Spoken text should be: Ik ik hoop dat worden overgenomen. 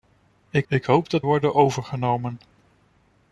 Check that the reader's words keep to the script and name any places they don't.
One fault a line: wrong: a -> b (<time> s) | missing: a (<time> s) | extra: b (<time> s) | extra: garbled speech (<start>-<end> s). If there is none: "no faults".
no faults